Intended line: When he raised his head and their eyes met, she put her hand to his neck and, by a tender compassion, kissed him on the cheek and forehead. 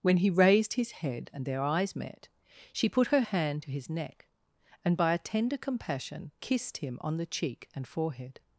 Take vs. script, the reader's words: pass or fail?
pass